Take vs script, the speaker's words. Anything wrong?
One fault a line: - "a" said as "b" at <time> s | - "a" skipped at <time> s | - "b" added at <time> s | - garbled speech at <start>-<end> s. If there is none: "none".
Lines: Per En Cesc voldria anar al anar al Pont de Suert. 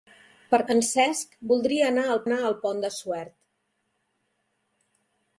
none